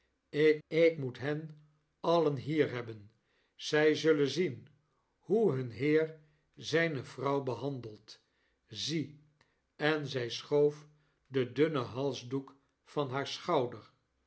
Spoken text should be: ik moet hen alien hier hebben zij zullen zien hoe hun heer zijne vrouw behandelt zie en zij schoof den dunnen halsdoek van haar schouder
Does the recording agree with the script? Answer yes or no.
no